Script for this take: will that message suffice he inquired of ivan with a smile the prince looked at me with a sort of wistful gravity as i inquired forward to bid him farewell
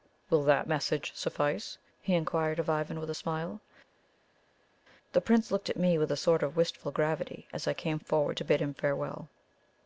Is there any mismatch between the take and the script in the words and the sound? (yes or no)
yes